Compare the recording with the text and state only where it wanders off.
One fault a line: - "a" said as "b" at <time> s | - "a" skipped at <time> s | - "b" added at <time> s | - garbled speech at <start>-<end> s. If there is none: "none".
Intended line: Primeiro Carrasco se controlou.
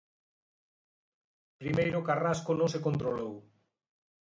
- "non" added at 2.6 s